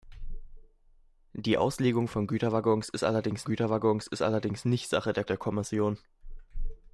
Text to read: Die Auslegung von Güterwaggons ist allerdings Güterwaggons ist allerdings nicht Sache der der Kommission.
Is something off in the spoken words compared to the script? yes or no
no